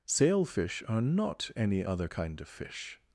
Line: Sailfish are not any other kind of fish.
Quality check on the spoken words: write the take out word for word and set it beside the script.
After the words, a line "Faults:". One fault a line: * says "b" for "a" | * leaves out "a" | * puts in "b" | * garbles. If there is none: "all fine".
Sailfish are not any other kind of fish.
Faults:
all fine